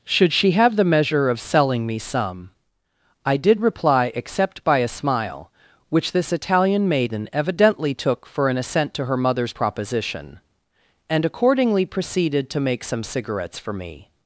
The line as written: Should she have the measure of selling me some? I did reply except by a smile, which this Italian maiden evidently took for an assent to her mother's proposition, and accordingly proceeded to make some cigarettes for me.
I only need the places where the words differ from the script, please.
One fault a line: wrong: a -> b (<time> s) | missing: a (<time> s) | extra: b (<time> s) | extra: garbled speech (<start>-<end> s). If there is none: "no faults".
no faults